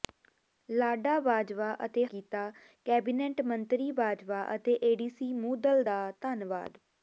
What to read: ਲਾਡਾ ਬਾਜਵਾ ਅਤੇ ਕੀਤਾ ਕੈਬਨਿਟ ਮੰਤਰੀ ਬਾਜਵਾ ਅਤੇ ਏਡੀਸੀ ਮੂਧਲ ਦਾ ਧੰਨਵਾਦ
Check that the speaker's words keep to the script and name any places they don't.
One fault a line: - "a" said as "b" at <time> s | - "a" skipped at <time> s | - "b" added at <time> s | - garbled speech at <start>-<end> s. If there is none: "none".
none